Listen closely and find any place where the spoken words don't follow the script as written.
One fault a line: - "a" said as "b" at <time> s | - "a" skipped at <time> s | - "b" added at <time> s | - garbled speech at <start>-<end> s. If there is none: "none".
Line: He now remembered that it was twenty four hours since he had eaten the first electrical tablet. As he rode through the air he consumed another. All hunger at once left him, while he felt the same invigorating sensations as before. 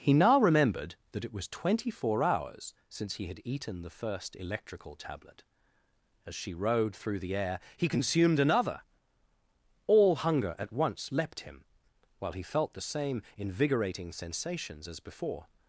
- "he" said as "she" at 6.3 s
- "left" said as "leapt" at 11.1 s